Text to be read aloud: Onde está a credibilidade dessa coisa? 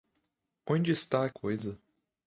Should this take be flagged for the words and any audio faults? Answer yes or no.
yes